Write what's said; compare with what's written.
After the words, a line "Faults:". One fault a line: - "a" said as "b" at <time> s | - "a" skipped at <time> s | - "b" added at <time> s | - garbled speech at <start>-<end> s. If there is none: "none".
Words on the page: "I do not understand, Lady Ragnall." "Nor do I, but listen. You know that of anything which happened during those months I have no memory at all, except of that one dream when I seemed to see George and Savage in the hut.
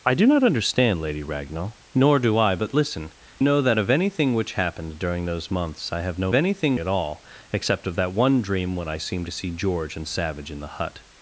"I do not understand, Lady Ragnall." "Nor do I, but listen. Know that of anything which happened during those months I have no anything at all, except of that one dream when I seemed to see George and Savage in the hut.
Faults:
- "You" skipped at 3.1 s
- "memory" said as "anything" at 6.3 s